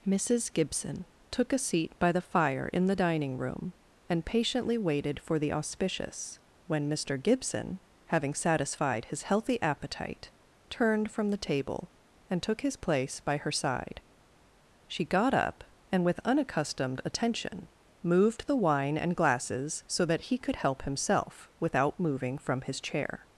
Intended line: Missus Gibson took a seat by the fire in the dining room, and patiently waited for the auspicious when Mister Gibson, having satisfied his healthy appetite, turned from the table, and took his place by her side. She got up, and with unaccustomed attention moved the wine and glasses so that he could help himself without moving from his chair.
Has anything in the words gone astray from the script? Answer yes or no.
no